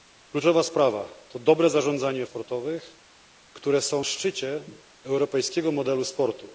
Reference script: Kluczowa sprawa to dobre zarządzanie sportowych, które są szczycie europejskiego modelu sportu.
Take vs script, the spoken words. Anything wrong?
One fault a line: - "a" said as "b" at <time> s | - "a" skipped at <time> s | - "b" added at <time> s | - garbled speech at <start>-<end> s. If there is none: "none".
none